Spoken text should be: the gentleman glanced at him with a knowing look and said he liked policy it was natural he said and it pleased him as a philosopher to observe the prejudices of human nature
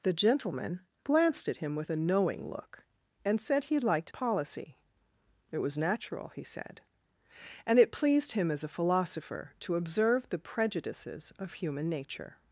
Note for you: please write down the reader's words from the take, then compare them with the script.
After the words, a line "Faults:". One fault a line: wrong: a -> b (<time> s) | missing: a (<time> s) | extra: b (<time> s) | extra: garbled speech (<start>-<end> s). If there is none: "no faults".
the gentleman glanced at him with a knowing look and said he liked policy it was natural he said and it pleased him as a philosopher to observe the prejudices of human nature
Faults:
no faults